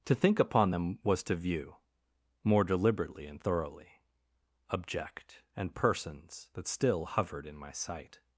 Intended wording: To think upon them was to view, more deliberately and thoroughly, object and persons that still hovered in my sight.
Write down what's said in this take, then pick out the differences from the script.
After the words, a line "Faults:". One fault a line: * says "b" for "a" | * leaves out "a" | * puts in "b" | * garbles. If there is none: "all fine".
To think upon them was to view, more deliberately and thoroughly, object and persons that still hovered in my sight.
Faults:
all fine